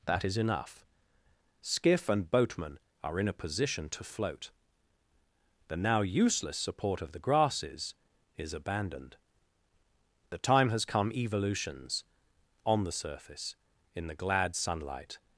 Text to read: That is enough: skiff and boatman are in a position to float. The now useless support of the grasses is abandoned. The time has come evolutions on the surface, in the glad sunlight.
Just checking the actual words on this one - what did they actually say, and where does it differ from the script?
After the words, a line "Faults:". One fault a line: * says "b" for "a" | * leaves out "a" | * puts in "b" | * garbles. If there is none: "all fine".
That is enough: skiff and boatman are in a position to float. The now useless support of the grasses is abandoned. The time has come evolutions on the surface, in the glad sunlight.
Faults:
all fine